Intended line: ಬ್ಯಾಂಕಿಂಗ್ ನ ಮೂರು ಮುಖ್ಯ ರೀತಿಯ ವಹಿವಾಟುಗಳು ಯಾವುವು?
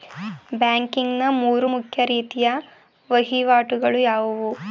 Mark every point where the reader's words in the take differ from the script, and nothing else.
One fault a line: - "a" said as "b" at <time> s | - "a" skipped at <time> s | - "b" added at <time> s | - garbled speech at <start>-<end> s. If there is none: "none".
none